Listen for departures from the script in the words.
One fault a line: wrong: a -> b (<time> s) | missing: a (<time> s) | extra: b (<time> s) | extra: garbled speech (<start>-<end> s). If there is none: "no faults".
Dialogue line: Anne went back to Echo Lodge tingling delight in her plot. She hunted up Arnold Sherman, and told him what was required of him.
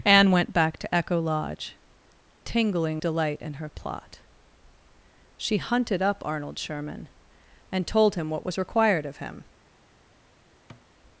no faults